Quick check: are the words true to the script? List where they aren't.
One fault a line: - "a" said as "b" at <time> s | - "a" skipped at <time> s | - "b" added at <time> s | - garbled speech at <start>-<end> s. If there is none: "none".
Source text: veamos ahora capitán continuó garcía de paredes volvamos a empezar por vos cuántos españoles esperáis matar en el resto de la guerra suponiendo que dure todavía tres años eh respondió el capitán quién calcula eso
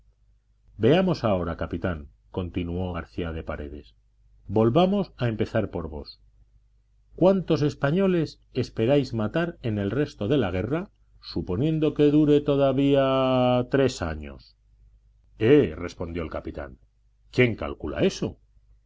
none